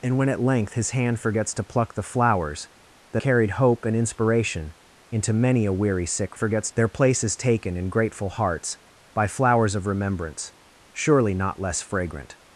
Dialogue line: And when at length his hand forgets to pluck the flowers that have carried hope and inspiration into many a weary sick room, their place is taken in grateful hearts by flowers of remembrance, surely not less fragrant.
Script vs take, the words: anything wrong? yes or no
yes